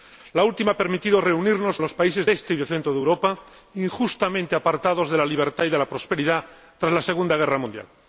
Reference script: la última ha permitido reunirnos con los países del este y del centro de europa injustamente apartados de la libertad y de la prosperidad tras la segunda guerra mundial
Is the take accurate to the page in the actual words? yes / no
no